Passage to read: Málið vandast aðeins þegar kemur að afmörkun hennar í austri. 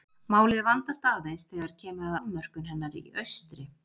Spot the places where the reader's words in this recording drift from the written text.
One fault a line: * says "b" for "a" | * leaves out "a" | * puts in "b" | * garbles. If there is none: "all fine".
* leaves out "að"